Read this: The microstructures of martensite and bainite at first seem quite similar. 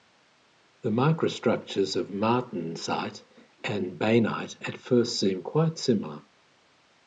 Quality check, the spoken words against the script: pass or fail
pass